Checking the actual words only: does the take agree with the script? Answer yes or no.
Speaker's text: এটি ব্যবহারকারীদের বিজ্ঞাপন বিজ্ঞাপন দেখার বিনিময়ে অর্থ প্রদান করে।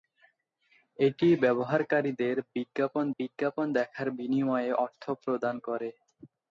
yes